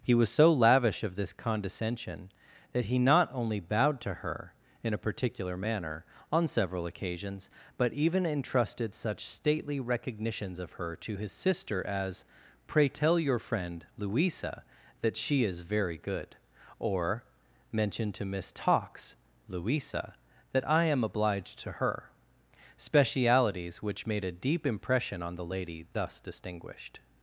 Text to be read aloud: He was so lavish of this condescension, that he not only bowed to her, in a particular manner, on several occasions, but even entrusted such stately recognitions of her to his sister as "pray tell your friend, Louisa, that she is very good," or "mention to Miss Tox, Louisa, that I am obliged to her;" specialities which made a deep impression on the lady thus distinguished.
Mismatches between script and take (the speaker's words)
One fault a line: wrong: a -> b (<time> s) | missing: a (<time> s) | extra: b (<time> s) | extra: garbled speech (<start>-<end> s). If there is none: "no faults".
no faults